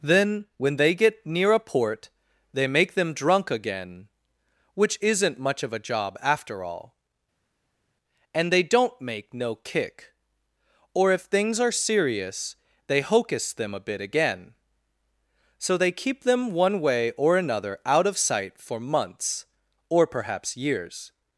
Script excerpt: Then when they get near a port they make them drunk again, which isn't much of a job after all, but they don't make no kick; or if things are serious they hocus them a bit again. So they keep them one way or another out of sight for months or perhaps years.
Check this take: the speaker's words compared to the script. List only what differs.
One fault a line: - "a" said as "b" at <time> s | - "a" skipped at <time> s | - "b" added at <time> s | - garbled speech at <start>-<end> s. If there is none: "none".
- "but" said as "and" at 8.3 s